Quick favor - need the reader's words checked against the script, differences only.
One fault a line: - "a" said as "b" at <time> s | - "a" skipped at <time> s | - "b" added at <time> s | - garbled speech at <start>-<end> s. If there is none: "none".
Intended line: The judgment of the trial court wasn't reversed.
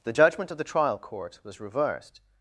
- "wasn't" said as "was" at 1.4 s